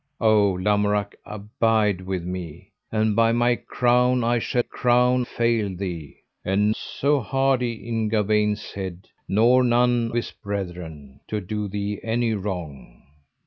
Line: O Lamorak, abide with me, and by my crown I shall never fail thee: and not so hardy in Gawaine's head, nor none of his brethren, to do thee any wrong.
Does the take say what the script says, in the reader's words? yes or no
no